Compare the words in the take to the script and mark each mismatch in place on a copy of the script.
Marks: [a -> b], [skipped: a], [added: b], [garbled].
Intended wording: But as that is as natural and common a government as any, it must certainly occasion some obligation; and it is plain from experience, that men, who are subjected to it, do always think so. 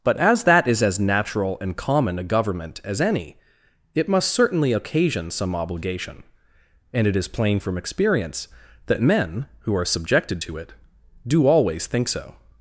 But as that is as natural and common a government as any, it must certainly occasion some obligation; and it is plain from experience, that men, who are subjected to it, do always think so.